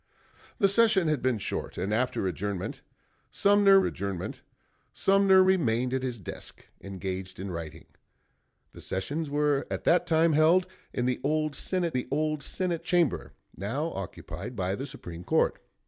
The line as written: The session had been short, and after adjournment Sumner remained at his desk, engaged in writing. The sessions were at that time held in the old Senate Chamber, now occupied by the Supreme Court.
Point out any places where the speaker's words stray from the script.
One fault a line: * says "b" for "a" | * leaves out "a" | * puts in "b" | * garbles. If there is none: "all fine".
* puts in "adjournment Sumner"
* puts in "the old Senate"